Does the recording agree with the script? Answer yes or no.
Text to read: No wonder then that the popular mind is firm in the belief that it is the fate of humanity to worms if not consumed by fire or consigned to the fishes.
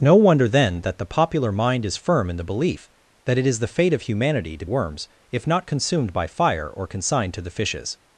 yes